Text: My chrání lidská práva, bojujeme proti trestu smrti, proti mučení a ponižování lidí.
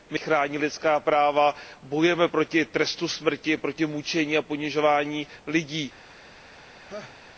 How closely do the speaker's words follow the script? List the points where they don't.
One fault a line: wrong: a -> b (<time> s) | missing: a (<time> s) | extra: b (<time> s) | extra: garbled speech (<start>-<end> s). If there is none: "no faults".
no faults